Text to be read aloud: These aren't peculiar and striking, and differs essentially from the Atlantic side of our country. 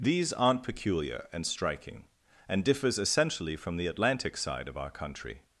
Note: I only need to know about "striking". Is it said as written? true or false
true